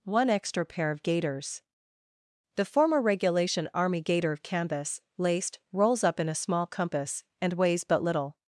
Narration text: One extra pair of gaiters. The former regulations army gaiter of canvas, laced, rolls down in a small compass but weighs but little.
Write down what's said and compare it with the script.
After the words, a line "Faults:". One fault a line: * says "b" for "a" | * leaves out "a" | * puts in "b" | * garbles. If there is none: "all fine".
One extra pair of gaiters. The former regulation army gaiter of canvas, laced, rolls up in a small compass and weighs but little.
Faults:
* says "regulation" for "regulations"
* says "up" for "down"
* says "and" for "but"